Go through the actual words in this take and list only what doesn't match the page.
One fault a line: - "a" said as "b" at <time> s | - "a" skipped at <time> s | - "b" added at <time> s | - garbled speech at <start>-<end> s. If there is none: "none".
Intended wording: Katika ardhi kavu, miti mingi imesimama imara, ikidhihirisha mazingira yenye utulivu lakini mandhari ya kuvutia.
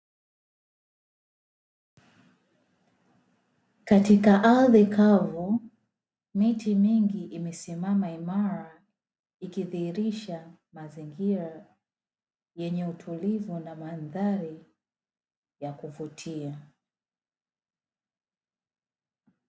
- "lakini" said as "na" at 13.6 s